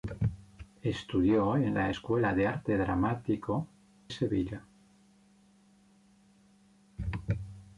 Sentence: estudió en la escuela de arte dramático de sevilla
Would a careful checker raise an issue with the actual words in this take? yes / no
yes